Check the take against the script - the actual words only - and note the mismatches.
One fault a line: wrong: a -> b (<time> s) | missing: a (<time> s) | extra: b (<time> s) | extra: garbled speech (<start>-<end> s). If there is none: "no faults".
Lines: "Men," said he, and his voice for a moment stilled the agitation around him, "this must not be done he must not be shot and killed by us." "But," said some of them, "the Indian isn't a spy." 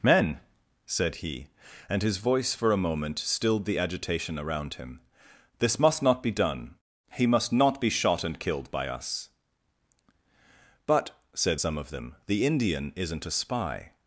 no faults